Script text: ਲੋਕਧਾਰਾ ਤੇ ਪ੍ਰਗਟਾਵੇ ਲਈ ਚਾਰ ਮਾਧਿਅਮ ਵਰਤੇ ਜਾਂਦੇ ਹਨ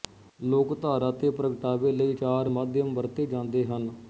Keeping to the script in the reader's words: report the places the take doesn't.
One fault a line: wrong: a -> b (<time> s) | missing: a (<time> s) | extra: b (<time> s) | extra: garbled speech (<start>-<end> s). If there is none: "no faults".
no faults